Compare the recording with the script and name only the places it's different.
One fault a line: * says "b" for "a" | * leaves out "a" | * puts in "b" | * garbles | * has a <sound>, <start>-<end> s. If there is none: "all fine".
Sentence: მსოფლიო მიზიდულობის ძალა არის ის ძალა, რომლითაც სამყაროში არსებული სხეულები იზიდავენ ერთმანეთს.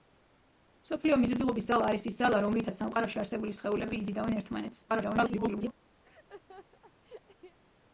* garbles
* has a laugh, 6.0-7.6 s